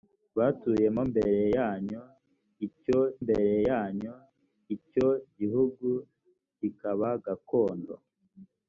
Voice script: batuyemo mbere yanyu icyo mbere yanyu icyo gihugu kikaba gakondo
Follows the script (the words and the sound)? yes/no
yes